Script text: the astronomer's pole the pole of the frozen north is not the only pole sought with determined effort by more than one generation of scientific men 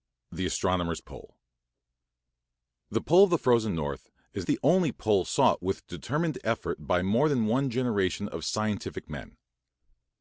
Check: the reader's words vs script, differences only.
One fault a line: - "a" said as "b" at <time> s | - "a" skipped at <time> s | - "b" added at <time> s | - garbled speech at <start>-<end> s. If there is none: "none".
- "not" skipped at 4.5 s